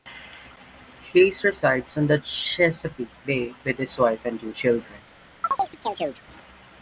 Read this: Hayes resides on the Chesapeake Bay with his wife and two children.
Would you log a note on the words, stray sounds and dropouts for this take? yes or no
yes